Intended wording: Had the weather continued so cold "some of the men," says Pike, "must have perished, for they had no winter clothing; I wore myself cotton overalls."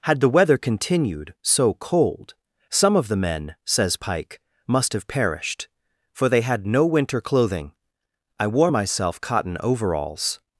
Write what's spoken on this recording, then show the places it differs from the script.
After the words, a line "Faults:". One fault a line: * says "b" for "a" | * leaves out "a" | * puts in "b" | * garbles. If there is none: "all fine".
Had the weather continued so cold "some of the men," says Pike, "must have perished, for they had no winter clothing; I wore myself cotton overalls."
Faults:
all fine